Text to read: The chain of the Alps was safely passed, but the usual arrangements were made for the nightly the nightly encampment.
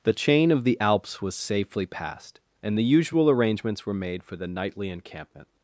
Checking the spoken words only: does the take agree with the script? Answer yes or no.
no